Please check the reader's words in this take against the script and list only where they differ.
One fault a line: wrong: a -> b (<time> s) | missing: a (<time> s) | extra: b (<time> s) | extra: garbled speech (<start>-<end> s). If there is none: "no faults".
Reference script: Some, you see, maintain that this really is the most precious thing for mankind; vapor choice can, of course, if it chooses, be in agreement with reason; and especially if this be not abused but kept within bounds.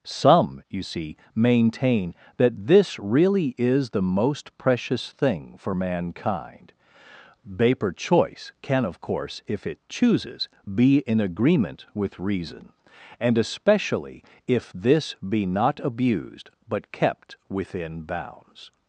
no faults